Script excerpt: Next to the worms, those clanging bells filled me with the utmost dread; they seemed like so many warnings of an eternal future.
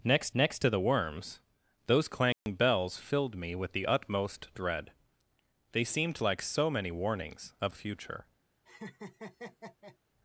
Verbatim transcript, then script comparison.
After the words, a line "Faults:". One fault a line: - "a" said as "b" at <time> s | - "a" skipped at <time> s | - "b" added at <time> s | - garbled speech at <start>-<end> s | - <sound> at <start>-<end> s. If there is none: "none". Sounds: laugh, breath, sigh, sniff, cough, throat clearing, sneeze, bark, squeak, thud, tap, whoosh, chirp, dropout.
Next next to the worms, those clanging bells filled me with the utmost dread; they seemed like so many warnings of future.
Faults:
- "next" added at 0.3 s
- dropout at 2.3-2.5 s
- "an eternal" skipped at 7.7 s
- laugh at 8.6-10.0 s